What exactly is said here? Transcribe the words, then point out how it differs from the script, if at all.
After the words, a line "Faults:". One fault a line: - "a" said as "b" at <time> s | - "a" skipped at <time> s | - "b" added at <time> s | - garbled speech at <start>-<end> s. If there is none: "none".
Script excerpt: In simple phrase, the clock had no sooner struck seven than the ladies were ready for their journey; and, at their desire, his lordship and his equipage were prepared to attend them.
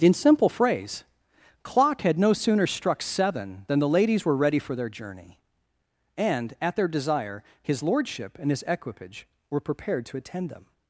In simple phrase, clock had no sooner struck seven than the ladies were ready for their journey; and, at their desire, his lordship and his equipage were prepared to attend them.
Faults:
- "the" skipped at 1.0 s